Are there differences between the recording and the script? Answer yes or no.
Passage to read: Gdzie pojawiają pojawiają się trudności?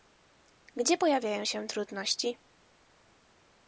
yes